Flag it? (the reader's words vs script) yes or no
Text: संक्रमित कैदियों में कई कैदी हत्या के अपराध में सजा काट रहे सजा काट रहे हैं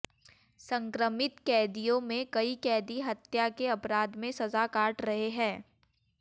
yes